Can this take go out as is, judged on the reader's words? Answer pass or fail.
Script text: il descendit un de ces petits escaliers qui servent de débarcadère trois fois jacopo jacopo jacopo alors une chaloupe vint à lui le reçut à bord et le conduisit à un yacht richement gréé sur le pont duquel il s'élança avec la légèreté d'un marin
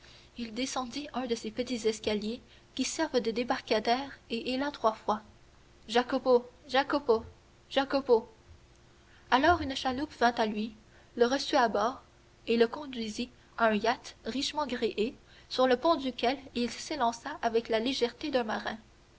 fail